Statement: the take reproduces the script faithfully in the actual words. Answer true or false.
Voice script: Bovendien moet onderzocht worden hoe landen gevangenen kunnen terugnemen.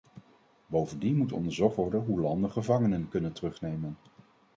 true